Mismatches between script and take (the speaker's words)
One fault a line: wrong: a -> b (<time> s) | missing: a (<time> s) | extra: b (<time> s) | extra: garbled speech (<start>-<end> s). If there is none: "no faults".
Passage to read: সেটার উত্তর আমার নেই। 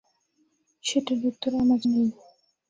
no faults